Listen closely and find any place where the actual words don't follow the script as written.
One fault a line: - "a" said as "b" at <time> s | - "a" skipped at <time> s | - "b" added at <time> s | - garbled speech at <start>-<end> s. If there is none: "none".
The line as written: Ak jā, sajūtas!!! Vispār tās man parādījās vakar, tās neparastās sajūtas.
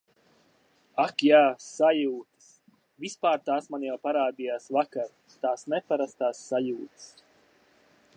- "jau" added at 3.9 s